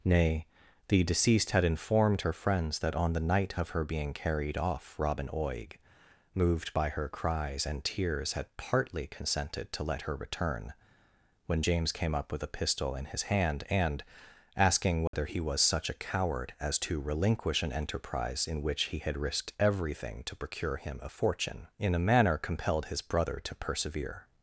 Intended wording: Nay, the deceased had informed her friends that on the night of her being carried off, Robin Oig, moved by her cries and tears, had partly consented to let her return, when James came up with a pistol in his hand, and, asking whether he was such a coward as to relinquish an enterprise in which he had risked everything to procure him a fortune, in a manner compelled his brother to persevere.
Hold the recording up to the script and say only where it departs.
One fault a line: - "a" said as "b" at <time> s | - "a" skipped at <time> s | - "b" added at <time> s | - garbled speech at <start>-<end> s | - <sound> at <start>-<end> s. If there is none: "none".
- dropout at 15.1-15.1 s